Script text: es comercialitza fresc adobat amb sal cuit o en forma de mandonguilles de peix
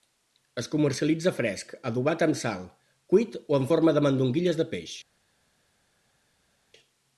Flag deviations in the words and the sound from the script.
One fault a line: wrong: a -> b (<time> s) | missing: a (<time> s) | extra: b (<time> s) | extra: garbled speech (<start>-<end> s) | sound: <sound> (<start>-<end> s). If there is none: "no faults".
no faults